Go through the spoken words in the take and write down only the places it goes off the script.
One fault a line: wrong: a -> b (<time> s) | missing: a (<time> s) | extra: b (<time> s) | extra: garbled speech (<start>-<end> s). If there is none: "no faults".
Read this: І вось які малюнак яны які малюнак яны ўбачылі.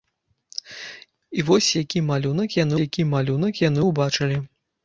no faults